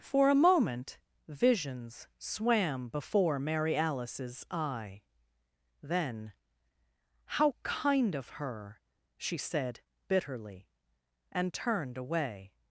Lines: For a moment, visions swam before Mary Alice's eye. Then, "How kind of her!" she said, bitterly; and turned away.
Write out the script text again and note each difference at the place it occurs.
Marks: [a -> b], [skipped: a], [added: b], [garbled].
For a moment, visions swam before Mary Alice's eye. Then, "How kind of her!" she said, bitterly; and turned away.